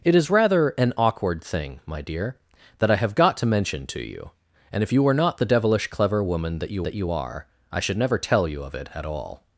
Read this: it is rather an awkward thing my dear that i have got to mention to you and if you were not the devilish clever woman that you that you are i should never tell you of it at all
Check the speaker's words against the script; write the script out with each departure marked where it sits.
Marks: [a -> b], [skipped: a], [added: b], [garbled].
it is rather an awkward thing my dear that i have got to mention to you and if you were not the devilish clever woman that you that you are i should never tell you of it at all